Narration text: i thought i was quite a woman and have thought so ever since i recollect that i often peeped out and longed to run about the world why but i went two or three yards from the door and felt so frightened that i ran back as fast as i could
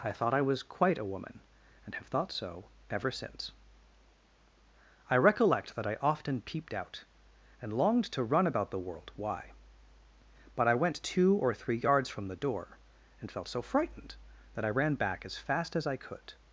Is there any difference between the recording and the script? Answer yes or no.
no